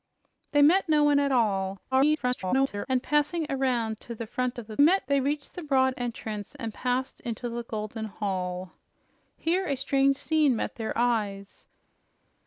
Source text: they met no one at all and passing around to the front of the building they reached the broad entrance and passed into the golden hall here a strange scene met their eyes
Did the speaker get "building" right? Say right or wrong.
wrong